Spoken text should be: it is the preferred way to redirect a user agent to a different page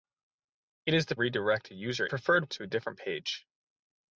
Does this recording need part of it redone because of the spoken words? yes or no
yes